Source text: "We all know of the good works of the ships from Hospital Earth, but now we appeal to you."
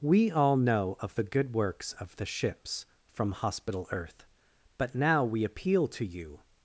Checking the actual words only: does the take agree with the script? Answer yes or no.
yes